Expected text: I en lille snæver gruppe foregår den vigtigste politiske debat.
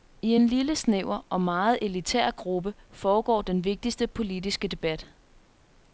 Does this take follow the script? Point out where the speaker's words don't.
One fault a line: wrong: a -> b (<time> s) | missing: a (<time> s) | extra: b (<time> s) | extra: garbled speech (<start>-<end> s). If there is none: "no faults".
extra: og meget elitær (1.3 s)